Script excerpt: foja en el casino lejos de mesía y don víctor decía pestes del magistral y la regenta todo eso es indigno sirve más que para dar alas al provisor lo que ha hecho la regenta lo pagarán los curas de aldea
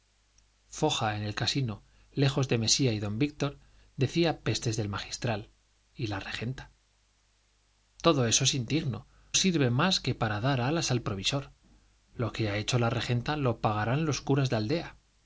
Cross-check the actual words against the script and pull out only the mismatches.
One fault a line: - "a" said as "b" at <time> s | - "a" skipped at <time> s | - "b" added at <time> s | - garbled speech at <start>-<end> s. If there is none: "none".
none